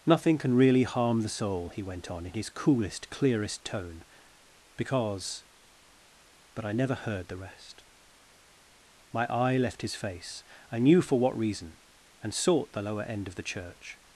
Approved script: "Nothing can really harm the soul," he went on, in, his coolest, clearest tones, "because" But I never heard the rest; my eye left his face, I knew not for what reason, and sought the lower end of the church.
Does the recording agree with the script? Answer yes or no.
no